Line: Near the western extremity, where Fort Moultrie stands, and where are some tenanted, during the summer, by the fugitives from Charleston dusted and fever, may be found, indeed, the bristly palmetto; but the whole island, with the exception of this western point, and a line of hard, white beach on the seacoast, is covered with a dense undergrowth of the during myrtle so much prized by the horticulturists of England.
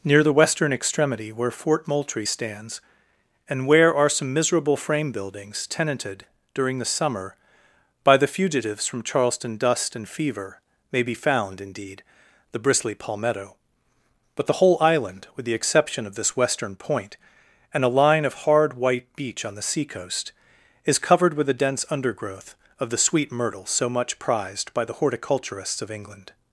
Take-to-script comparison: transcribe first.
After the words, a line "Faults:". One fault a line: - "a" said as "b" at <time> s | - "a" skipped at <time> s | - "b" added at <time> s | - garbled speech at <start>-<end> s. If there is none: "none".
Near the western extremity, where Fort Moultrie stands, and where are some miserable frame buildings, tenanted, during the summer, by the fugitives from Charleston dust and fever, may be found, indeed, the bristly palmetto; but the whole island, with the exception of this western point, and a line of hard, white beach on the seacoast, is covered with a dense undergrowth of the sweet myrtle so much prized by the horticulturists of England.
Faults:
- "miserable frame buildings" added at 4.3 s
- "dusted" said as "dust" at 9.6 s
- "during" said as "sweet" at 23.0 s